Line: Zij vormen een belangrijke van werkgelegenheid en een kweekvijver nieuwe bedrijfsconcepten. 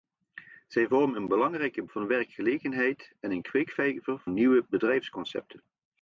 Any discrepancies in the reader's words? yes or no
no